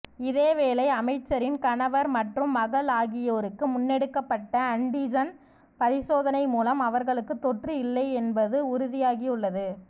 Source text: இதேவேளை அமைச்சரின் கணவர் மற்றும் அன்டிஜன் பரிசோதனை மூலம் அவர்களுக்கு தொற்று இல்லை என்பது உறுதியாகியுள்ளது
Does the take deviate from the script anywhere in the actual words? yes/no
yes